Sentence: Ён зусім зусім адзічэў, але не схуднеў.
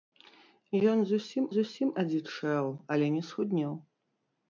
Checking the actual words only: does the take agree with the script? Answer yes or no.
yes